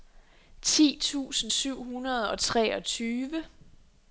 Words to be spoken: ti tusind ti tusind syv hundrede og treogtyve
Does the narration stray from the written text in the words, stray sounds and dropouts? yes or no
yes